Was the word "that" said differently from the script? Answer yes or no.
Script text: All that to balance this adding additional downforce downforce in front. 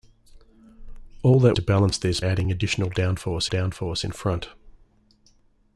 no